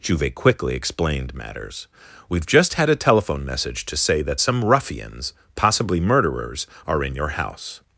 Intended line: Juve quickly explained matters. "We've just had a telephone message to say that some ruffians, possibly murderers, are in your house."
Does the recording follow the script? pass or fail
pass